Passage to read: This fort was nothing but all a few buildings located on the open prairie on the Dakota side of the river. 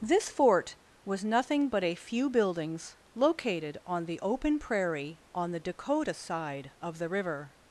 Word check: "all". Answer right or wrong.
wrong